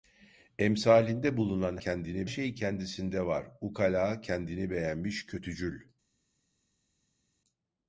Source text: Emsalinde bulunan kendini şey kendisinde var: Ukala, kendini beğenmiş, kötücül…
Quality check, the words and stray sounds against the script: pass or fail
pass